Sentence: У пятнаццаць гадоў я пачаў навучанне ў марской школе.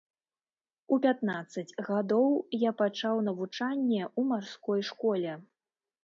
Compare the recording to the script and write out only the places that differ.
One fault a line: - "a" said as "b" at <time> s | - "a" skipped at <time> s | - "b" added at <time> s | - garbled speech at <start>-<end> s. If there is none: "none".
none